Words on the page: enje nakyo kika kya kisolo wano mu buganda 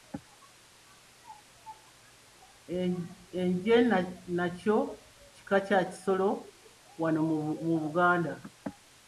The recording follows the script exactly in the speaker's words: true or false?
true